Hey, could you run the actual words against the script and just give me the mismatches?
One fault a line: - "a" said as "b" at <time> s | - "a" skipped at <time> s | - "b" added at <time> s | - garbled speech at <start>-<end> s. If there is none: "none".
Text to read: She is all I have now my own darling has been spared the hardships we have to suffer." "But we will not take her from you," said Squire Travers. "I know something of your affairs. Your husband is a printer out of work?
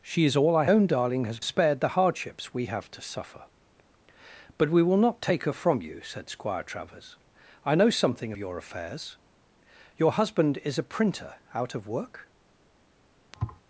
- "have now my" skipped at 0.7 s
- "been" skipped at 1.4 s
- "of" skipped at 8.3 s